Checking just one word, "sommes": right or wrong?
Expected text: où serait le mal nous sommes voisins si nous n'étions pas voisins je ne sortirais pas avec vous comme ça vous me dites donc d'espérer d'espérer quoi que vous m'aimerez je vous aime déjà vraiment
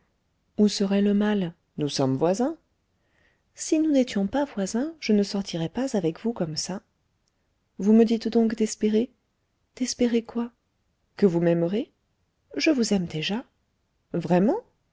right